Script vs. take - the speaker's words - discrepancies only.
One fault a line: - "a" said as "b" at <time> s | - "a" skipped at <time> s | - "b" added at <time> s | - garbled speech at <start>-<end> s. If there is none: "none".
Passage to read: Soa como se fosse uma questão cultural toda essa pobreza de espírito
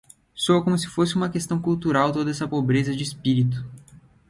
none